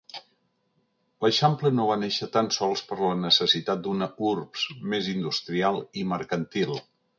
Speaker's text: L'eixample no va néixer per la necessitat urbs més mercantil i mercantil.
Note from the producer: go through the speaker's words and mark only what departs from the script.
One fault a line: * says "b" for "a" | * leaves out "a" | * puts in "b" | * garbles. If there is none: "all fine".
* puts in "tan sols"
* puts in "d'una"
* says "industrial" for "mercantil"